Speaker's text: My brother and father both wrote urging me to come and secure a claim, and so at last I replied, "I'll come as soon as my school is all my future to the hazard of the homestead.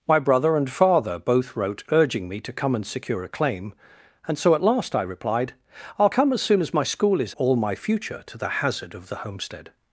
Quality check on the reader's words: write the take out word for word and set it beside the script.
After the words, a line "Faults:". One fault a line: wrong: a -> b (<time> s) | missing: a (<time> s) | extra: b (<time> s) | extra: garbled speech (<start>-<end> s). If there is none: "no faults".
My brother and father both wrote urging me to come and secure a claim, and so at last I replied, "I'll come as soon as my school is all my future to the hazard of the homestead.
Faults:
no faults